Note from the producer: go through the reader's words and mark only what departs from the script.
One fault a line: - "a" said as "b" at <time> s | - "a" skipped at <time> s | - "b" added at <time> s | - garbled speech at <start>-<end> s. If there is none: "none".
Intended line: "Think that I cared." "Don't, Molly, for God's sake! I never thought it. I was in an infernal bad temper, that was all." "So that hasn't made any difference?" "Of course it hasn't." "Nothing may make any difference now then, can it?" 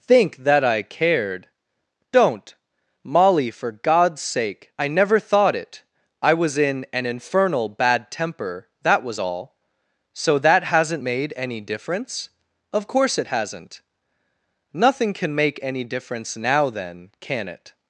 - "may" said as "can" at 15.1 s